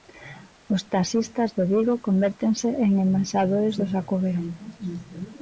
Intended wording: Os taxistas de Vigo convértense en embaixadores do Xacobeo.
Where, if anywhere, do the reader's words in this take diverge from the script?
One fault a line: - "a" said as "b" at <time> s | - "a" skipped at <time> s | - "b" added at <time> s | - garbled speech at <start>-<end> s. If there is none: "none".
none